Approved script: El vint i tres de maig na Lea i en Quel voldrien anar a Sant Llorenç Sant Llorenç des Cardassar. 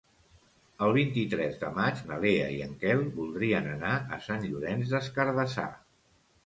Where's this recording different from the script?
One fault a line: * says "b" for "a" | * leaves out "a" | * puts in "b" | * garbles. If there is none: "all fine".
* leaves out "Sant Llorenç"